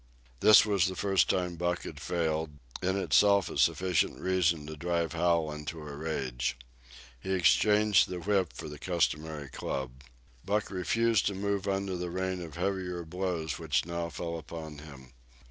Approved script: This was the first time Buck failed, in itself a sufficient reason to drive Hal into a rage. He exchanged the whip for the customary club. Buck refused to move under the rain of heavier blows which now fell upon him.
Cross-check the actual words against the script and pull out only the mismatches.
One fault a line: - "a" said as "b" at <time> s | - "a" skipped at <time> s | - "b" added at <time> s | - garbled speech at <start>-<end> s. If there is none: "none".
- "had" added at 1.8 s